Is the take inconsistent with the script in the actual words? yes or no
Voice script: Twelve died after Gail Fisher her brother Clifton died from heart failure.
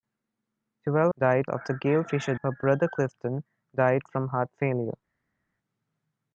no